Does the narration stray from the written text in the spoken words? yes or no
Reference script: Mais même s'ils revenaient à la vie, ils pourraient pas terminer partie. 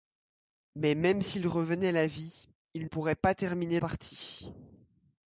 no